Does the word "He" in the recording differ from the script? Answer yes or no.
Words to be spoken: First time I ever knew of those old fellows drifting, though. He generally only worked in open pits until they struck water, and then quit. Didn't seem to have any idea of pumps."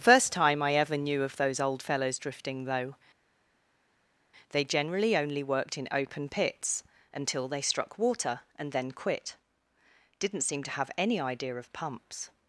yes